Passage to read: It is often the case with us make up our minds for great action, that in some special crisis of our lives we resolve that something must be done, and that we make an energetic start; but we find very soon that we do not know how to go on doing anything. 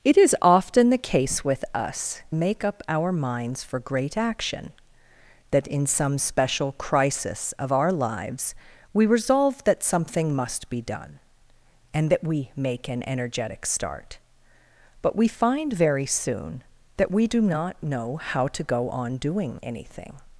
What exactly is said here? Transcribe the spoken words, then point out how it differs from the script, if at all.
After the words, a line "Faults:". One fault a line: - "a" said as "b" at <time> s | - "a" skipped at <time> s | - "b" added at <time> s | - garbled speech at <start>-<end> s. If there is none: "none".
It is often the case with us make up our minds for great action, that in some special crisis of our lives we resolve that something must be done, and that we make an energetic start; but we find very soon that we do not know how to go on doing anything.
Faults:
none